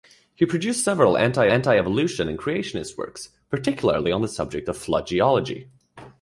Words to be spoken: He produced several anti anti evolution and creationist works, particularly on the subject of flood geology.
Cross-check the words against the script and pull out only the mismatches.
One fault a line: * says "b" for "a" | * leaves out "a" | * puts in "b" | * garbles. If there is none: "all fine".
all fine